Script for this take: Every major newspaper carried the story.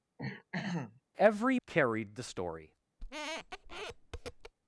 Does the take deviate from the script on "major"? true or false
true